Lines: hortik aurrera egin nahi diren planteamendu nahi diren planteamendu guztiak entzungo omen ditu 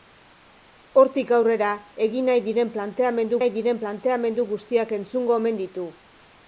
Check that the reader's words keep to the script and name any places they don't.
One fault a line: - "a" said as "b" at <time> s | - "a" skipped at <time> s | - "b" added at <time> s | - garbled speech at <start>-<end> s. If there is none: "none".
none